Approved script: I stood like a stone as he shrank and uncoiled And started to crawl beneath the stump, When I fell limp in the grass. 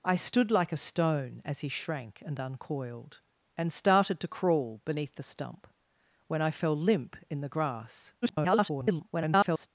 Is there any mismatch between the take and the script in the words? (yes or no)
yes